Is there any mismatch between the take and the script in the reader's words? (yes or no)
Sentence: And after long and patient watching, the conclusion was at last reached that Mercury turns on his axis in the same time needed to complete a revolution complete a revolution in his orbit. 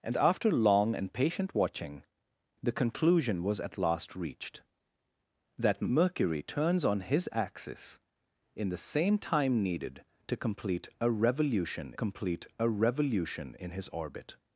no